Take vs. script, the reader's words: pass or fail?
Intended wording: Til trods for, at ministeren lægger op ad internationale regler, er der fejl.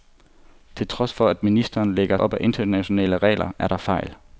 pass